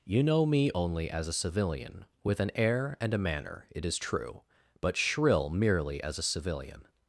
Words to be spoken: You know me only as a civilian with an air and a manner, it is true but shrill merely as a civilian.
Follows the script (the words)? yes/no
yes